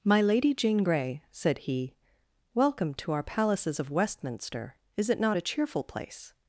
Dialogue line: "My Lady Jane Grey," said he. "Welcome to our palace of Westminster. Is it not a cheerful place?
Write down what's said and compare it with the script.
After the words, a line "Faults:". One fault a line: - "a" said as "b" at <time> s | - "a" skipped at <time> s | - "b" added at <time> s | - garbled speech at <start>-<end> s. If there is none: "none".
"My Lady Jane Grey," said he. "Welcome to our palaces of Westminster. Is it not a cheerful place?
Faults:
- "palace" said as "palaces" at 3.2 s